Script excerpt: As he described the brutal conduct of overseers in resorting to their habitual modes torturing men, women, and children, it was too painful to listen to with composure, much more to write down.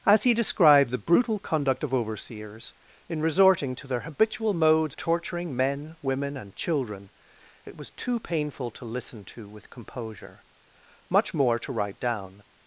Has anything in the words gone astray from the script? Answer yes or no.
no